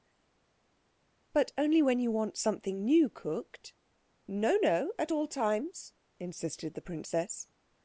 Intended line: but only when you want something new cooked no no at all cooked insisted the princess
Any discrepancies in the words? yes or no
yes